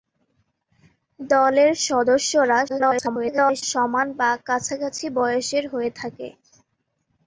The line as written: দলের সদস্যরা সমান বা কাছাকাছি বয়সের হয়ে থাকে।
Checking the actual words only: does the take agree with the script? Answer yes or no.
no